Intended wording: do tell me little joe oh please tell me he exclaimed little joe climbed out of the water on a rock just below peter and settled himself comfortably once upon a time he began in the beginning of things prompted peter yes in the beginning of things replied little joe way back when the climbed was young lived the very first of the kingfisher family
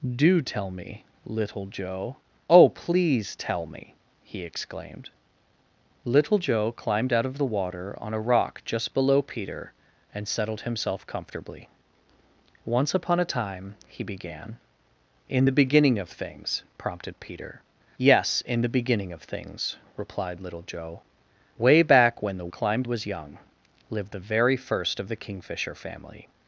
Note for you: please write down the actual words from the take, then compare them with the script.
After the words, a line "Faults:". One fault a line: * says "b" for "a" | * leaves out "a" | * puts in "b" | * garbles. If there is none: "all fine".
do tell me little joe oh please tell me he exclaimed little joe climbed out of the water on a rock just below peter and settled himself comfortably once upon a time he began in the beginning of things prompted peter yes in the beginning of things replied little joe way back when the climbed was young lived the very first of the kingfisher family
Faults:
all fine